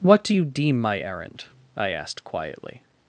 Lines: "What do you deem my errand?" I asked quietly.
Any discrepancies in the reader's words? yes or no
no